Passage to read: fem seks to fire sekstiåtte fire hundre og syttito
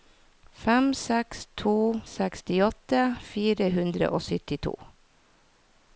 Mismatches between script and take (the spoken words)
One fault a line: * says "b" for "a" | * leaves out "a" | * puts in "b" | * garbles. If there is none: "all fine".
* leaves out "fire"